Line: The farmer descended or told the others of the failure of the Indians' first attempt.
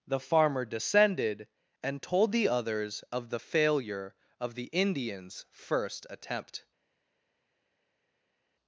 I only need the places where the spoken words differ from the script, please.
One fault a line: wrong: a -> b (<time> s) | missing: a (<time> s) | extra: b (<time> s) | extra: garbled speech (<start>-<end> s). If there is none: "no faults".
wrong: or -> and (1.8 s)